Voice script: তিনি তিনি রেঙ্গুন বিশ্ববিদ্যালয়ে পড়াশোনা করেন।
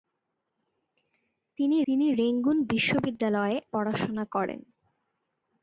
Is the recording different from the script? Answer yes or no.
no